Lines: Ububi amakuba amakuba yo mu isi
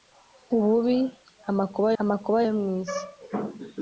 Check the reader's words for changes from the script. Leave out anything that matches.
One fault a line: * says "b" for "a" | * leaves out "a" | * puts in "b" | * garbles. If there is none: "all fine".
all fine